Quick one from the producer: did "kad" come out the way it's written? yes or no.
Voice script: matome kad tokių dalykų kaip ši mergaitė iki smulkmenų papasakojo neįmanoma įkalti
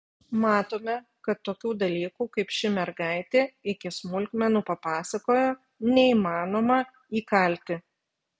yes